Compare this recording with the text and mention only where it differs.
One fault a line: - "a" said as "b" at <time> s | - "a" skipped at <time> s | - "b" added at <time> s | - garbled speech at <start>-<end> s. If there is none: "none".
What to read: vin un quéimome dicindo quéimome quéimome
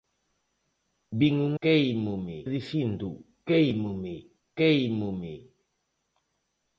none